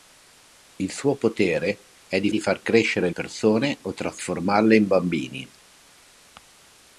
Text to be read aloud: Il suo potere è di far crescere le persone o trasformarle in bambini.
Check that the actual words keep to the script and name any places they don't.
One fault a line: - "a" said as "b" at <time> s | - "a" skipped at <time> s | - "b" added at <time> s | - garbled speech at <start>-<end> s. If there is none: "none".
- "di" added at 2.3 s
- "le" skipped at 3.1 s